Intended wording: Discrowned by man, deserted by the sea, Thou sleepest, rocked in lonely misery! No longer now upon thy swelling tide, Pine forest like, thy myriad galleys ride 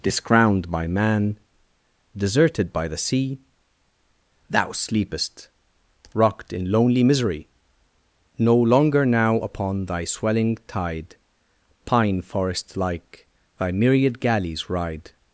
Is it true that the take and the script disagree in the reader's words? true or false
false